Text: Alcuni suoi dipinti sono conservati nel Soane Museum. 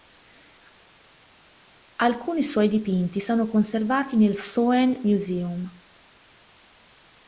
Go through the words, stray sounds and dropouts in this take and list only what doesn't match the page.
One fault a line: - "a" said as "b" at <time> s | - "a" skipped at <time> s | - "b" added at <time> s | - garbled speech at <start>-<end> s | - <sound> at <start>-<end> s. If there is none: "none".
none